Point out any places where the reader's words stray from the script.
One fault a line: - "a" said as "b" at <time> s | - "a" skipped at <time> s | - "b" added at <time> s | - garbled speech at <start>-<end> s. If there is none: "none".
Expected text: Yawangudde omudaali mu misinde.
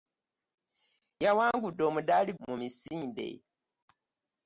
none